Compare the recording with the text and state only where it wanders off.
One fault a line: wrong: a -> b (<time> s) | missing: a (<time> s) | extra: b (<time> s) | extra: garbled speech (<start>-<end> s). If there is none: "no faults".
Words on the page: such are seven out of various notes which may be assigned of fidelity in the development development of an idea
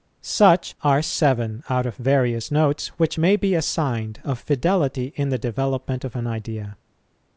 missing: development (6.0 s)